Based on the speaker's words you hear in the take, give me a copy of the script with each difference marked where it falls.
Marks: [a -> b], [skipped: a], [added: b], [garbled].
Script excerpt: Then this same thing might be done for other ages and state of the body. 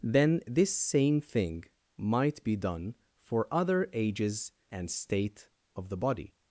Then this same thing might be done for other ages and state of the body.